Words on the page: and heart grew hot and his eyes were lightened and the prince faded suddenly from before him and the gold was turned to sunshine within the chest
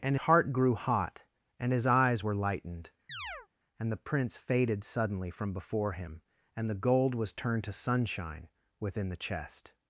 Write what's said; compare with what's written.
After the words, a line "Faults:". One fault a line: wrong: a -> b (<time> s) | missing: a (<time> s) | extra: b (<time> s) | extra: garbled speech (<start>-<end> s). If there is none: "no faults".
and heart grew hot and his eyes were lightened and the prince faded suddenly from before him and the gold was turned to sunshine within the chest
Faults:
no faults